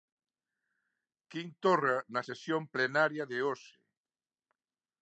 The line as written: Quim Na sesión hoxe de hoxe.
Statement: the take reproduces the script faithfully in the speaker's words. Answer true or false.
false